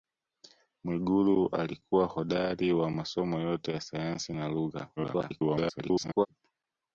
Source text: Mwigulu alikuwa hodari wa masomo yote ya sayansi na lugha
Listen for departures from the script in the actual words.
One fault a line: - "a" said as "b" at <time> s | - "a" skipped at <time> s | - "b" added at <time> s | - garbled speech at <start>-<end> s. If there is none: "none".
- garbled speech at 5.0-6.3 s